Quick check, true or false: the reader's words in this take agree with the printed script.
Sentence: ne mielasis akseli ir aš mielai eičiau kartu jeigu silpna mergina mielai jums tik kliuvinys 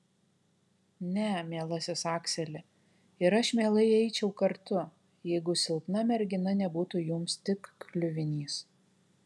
false